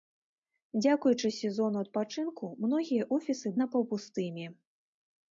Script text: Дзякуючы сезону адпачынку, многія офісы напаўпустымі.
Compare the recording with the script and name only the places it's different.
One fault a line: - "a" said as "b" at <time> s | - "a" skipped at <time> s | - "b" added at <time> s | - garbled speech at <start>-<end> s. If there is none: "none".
none